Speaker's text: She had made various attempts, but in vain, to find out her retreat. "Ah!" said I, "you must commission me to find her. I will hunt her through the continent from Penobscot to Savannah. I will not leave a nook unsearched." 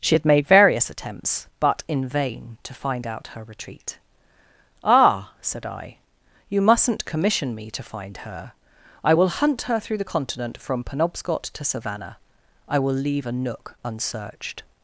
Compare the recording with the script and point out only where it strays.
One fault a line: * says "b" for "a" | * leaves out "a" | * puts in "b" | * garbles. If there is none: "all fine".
* says "mustn't" for "must"
* leaves out "not"